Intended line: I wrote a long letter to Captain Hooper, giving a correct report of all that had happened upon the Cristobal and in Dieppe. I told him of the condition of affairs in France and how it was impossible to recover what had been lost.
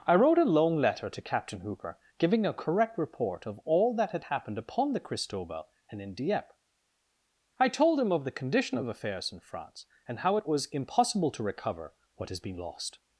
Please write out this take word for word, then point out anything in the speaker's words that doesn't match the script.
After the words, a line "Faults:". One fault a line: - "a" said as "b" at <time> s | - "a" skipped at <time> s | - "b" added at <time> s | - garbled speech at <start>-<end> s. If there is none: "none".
I wrote a long letter to Captain Hooper, giving a correct report of all that had happened upon the Cristobal and in Dieppe. I told him of the condition of affairs in France and how it was impossible to recover what has been lost.
Faults:
- "had" said as "has" at 12.3 s